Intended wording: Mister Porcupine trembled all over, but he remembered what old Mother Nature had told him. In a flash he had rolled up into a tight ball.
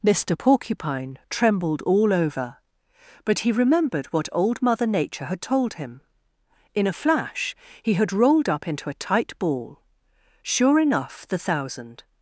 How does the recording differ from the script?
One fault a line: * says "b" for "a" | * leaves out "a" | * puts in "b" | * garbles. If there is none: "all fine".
* puts in "Sure enough the thousand"